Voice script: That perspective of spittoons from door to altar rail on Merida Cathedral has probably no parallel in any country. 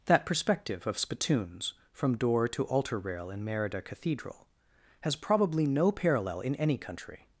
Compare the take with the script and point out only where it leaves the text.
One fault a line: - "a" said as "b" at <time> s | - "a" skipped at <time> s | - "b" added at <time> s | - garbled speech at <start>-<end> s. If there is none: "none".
- "on" said as "in" at 3.3 s